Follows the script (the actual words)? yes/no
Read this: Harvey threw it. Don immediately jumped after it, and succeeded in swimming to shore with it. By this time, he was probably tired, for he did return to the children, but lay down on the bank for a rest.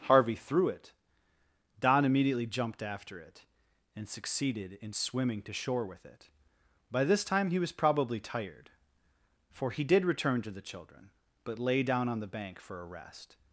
yes